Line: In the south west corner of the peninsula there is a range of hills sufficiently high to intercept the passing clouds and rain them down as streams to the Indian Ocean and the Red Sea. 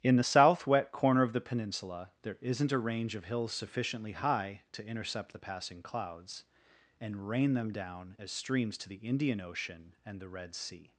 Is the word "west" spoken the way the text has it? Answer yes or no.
no